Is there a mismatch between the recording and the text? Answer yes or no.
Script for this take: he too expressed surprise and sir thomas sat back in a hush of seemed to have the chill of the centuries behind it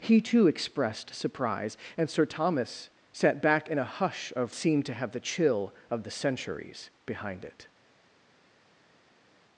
no